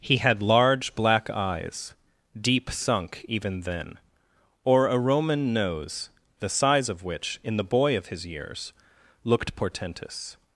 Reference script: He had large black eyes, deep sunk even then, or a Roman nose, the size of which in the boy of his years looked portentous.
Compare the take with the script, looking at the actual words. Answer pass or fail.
pass